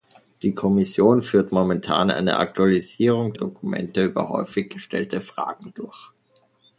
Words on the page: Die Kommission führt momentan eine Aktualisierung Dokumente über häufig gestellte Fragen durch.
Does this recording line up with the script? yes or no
yes